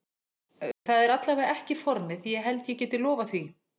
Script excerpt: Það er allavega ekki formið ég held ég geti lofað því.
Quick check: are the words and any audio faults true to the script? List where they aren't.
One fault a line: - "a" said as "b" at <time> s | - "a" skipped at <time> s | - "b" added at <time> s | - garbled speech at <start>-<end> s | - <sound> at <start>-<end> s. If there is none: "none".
- dropout at 0.7-0.9 s